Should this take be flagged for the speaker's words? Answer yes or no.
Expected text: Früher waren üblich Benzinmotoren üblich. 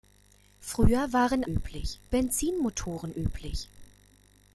no